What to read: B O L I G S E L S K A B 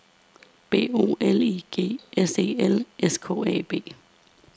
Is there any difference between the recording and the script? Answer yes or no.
no